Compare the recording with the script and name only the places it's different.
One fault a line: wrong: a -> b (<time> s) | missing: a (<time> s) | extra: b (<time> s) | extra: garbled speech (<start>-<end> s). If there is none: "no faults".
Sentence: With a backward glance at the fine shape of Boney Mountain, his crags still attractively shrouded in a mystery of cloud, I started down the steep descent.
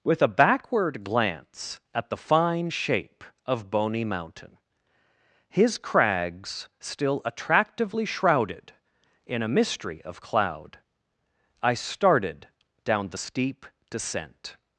no faults